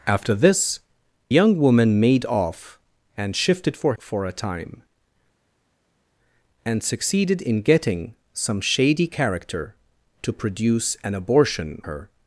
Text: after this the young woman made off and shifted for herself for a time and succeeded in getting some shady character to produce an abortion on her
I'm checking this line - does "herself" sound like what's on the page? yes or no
no